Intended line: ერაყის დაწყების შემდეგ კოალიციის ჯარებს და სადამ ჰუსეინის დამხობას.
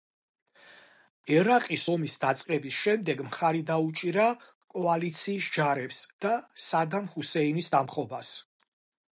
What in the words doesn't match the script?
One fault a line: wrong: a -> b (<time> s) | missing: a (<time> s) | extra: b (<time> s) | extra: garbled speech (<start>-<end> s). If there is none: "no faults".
extra: ომის (1.9 s)
extra: მხარი დაუჭირა (3.3 s)